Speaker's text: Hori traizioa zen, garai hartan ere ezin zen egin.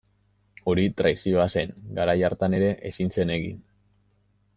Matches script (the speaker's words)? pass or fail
pass